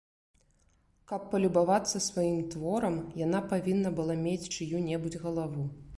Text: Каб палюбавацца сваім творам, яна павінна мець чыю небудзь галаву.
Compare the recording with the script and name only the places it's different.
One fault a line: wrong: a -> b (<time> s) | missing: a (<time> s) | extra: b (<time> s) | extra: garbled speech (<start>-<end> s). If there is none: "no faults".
extra: была (4.0 s)